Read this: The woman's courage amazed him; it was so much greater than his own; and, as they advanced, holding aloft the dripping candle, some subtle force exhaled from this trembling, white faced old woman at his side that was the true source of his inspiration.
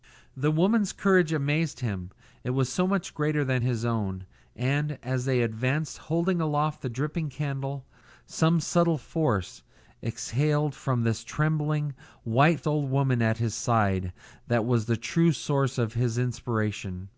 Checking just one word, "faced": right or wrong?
wrong